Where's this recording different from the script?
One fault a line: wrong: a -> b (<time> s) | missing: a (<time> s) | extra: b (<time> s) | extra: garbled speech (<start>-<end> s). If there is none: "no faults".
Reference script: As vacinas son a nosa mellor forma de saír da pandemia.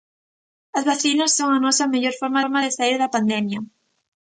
extra: forma (2.4 s)